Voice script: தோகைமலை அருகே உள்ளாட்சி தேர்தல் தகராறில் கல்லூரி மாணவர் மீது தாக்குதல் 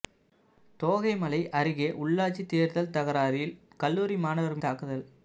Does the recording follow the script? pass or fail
fail